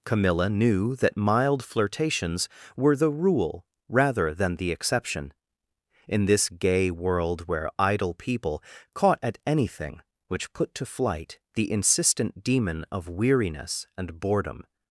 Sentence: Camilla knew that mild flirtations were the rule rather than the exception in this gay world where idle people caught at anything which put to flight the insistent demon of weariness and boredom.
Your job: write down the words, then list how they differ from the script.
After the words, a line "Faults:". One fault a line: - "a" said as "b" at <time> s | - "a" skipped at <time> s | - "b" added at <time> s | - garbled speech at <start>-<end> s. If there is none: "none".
Camilla knew that mild flirtations were the rule rather than the exception in this gay world where idle people caught at anything which put to flight the insistent demon of weariness and boredom.
Faults:
none